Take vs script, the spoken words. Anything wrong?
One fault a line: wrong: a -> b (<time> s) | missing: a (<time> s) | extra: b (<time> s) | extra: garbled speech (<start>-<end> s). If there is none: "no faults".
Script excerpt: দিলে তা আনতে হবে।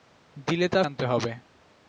no faults